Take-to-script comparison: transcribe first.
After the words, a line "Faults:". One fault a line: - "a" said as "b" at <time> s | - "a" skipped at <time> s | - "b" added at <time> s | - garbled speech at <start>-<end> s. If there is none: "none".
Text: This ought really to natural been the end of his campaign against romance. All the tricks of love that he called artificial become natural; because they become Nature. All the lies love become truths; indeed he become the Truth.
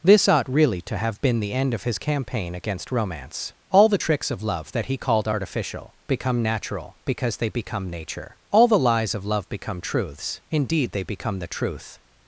This ought really to have been the end of his campaign against romance. All the tricks of love that he called artificial become natural; because they become Nature. All the lies of love become truths; indeed they become the Truth.
Faults:
- "natural" said as "have" at 1.0 s
- "of" added at 9.1 s
- "he" said as "they" at 10.9 s